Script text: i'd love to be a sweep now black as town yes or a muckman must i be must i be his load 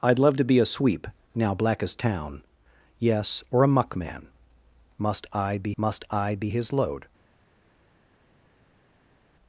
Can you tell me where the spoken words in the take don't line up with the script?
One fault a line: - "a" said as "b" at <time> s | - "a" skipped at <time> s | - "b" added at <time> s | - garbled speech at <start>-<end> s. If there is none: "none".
none